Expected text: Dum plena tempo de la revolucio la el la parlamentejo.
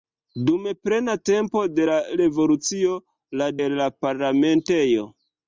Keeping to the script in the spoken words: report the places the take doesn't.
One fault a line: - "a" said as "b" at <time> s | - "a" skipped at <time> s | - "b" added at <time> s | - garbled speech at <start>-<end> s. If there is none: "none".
none